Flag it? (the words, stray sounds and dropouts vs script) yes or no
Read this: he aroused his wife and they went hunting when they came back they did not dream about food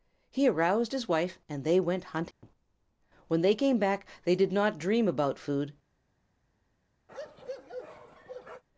yes